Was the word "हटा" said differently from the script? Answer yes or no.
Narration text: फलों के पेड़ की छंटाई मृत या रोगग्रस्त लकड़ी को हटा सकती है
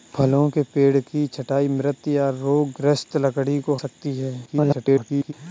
yes